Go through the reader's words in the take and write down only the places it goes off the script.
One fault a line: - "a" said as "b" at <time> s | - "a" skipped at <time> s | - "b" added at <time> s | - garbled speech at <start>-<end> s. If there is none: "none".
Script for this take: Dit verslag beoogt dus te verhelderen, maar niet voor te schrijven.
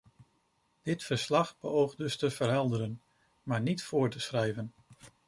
none